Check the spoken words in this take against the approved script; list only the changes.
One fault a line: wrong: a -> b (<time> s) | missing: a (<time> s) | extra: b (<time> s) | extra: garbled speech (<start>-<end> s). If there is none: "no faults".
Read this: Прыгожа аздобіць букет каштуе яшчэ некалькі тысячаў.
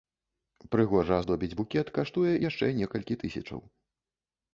no faults